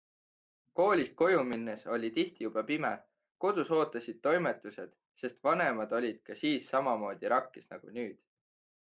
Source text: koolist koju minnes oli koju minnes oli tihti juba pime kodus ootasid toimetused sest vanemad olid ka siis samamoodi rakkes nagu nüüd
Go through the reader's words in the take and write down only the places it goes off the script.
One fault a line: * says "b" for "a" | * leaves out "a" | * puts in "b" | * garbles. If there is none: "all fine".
* leaves out "koju minnes oli"